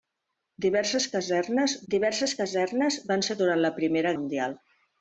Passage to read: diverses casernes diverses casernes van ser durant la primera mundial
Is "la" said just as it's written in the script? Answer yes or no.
yes